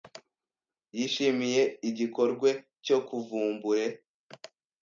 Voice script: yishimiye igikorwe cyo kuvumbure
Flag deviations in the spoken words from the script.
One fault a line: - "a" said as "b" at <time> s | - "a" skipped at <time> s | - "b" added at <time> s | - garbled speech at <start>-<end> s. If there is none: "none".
none